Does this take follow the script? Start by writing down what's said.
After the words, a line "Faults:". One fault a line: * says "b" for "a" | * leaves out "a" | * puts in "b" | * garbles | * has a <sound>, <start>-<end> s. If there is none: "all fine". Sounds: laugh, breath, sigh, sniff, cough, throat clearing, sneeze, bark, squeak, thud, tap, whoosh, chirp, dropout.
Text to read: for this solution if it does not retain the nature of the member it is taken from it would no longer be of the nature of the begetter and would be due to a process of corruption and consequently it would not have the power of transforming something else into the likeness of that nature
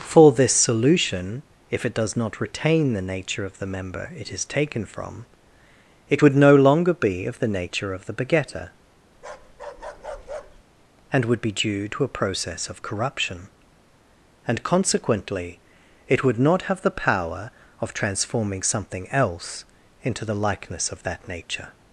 for this solution if it does not retain the nature of the member it is taken from it would no longer be of the nature of the begetter and would be due to a process of corruption and consequently it would not have the power of transforming something else into the likeness of that nature
Faults:
* has a bark, 9.1-10.6 s